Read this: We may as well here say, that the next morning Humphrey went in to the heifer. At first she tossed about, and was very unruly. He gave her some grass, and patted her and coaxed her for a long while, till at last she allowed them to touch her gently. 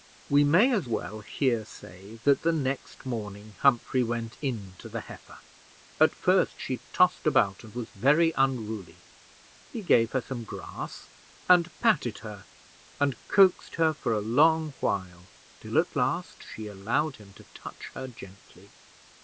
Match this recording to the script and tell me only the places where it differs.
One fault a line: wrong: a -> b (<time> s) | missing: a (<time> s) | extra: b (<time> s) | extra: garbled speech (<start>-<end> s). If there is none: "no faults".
wrong: them -> him (17.2 s)